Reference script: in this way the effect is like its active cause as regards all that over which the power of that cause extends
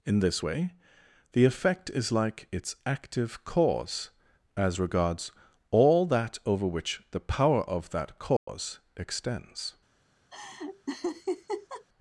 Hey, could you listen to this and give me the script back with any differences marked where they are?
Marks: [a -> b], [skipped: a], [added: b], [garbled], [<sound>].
in this way the effect is like its active cause as regards all that over which the power of that cause [dropout] extends [laugh]